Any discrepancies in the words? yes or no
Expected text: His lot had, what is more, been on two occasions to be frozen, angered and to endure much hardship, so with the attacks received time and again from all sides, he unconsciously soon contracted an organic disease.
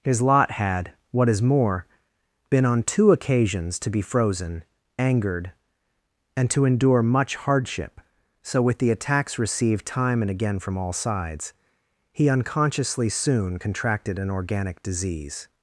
no